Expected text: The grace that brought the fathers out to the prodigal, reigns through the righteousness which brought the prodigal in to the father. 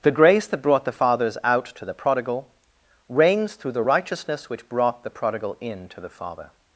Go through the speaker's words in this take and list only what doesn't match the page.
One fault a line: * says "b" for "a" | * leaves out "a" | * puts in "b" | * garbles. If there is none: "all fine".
all fine